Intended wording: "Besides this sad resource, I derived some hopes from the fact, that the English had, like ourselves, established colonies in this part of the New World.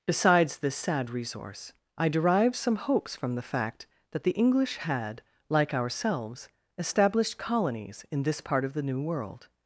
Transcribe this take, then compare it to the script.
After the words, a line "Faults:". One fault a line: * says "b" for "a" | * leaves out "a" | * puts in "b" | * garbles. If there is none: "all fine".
"Besides this sad resource, I derived some hopes from the fact, that the English had, like ourselves, established colonies in this part of the New World.
Faults:
all fine